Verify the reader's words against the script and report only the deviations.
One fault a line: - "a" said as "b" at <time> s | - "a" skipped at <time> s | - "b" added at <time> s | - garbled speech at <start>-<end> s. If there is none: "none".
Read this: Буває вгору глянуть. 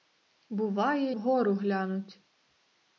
none